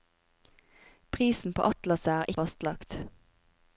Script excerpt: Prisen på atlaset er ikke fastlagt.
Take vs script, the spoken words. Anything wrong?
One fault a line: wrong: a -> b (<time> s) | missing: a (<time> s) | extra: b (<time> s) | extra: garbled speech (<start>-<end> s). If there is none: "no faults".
missing: ikke (2.3 s)